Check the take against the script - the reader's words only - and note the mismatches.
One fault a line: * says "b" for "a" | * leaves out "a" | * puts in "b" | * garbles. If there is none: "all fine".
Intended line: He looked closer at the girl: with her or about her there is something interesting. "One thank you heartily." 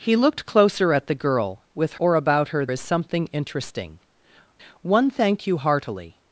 * leaves out "her"
* leaves out "there"